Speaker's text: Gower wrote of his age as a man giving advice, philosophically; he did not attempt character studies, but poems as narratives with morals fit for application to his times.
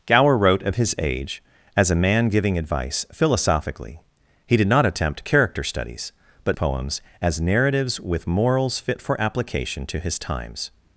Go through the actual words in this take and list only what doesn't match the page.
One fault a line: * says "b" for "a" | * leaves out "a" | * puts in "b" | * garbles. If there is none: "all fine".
all fine